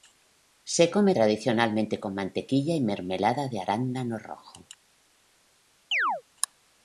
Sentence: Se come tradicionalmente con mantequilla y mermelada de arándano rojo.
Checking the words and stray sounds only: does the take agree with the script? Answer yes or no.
no